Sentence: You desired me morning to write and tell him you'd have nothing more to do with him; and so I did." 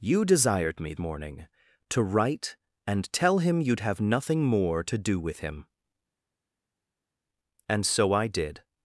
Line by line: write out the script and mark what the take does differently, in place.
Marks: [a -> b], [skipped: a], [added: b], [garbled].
You desired me morning to write and tell him you'd have nothing more to do with him; and so I did."